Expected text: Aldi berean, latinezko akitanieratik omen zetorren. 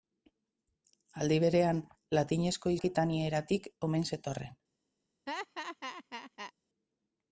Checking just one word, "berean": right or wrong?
right